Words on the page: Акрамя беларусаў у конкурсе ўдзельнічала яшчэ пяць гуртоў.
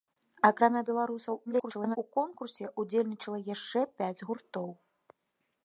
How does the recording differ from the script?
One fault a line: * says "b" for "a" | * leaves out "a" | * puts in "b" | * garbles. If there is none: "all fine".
* garbles